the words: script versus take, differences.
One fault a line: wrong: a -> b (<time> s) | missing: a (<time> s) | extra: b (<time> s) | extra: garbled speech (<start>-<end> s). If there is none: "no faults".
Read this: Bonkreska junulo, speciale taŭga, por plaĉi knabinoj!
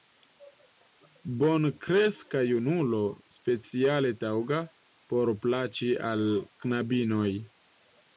extra: al (6.1 s)